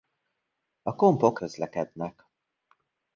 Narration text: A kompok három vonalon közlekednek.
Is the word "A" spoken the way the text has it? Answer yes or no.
yes